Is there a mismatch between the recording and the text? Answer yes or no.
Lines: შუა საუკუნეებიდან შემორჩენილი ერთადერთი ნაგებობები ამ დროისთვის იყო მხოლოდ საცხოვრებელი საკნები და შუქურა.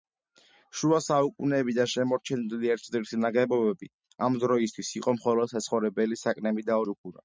no